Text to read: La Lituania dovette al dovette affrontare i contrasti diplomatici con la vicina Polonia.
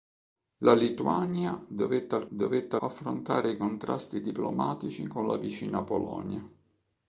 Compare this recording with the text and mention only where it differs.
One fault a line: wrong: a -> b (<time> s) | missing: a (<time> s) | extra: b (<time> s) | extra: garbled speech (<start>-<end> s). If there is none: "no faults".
no faults